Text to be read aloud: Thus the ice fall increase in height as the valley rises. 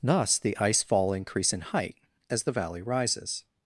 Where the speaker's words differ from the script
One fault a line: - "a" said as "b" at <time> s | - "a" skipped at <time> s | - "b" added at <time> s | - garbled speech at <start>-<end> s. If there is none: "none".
none